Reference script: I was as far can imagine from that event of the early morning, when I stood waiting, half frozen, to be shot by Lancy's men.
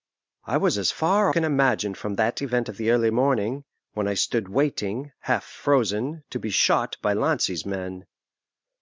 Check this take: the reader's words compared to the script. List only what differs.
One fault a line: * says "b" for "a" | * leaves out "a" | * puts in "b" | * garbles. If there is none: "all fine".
all fine